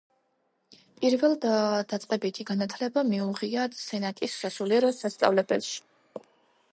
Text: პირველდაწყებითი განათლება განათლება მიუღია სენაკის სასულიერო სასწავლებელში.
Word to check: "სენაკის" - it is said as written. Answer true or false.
true